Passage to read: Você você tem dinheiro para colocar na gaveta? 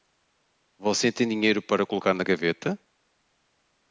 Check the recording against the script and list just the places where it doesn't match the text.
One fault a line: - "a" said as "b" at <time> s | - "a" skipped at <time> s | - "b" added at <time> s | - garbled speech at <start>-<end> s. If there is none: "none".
- "você" skipped at 1.1 s